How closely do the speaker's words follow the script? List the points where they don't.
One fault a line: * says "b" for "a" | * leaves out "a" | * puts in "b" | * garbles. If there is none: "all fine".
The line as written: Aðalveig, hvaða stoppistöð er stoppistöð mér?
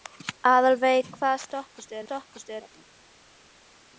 all fine